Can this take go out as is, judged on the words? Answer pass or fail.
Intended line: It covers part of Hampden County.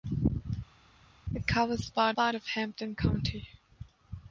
fail